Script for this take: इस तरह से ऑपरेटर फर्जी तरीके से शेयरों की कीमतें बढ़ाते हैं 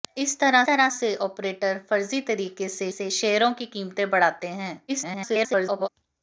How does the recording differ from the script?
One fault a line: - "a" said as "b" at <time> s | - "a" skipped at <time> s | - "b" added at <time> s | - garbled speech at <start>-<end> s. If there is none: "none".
- "तरह" added at 0.7 s
- "से" added at 2.9 s
- garbled speech at 4.9-5.9 s